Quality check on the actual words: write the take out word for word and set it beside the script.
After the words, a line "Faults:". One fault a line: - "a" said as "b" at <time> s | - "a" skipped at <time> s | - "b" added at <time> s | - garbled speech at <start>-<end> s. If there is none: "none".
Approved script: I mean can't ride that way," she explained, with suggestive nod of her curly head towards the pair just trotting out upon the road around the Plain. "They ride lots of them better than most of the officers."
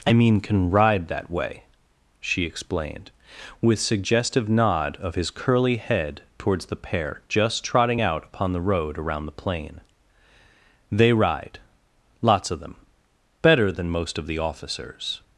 I mean can ride that way," she explained, with suggestive nod of his curly head towards the pair just trotting out upon the road around the Plain. "They ride lots of them better than most of the officers."
Faults:
- "can't" said as "can" at 0.4 s
- "her" said as "his" at 5.2 s